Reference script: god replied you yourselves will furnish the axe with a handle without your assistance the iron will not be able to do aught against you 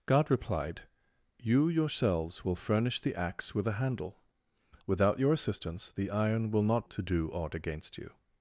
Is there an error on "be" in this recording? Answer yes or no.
yes